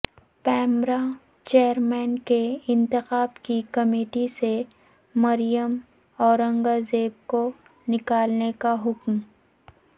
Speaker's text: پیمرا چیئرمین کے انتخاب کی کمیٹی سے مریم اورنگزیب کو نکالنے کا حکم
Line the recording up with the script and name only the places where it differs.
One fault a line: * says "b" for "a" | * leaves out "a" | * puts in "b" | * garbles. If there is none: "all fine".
all fine